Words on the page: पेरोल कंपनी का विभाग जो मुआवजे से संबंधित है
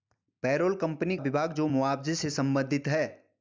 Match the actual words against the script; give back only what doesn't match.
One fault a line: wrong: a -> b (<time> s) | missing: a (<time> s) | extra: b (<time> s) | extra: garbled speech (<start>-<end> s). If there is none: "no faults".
missing: का (1.2 s)